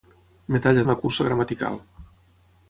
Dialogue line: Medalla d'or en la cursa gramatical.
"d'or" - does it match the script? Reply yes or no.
no